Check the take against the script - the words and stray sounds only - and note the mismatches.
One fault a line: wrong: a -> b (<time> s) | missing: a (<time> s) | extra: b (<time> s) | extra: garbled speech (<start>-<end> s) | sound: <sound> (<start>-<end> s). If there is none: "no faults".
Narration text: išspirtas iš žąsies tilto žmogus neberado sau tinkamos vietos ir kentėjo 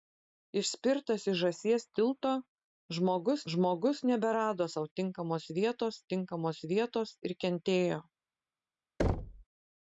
extra: žmogus (3.6 s)
extra: tinkamos vietos (6.1 s)
sound: thud (9.0-9.4 s)